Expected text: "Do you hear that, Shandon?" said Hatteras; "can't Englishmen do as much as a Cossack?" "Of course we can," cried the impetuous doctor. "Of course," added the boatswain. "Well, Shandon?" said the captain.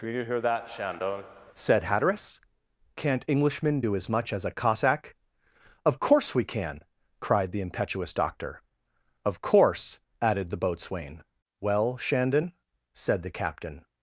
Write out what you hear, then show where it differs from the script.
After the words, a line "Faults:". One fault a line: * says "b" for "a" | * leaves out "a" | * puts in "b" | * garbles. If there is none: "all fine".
"Do you hear that, Shandon?" said Hatteras; "can't Englishmen do as much as a Cossack?" "Of course we can," cried the impetuous doctor. "Of course," added the boatswain. "Well, Shandon?" said the captain.
Faults:
all fine